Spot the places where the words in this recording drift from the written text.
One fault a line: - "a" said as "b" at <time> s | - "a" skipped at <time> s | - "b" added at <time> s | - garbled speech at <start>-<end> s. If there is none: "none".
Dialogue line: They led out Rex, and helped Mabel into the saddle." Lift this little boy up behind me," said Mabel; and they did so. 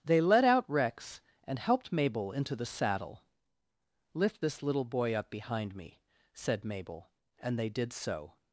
none